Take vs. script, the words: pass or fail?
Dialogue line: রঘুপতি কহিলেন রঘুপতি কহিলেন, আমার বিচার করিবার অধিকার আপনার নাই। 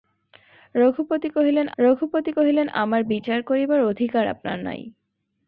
pass